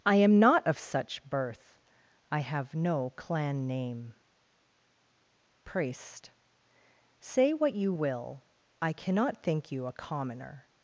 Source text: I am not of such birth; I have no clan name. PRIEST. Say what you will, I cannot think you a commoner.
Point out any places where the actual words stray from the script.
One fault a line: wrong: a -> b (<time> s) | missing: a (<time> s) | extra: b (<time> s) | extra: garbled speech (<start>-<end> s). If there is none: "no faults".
no faults